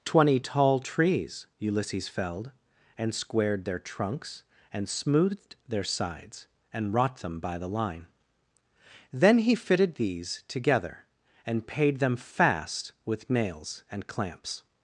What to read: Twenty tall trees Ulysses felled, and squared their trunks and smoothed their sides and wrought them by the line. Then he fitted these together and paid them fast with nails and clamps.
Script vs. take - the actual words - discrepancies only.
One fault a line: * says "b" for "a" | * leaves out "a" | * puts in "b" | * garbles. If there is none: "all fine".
all fine